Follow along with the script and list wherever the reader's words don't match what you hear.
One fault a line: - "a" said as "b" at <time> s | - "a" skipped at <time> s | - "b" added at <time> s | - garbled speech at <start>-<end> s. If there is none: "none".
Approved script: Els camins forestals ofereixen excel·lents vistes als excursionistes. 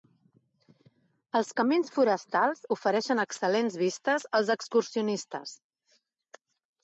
none